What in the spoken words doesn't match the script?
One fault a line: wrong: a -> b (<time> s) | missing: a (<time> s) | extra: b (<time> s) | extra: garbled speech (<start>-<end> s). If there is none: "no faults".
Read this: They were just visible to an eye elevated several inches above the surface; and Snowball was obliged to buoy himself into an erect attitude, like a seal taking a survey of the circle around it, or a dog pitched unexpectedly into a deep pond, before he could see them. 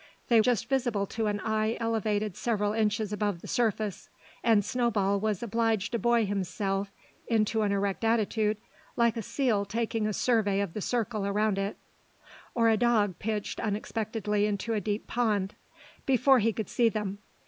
missing: were (0.4 s)